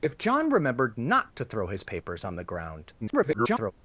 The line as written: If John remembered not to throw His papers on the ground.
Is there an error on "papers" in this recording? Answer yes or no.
no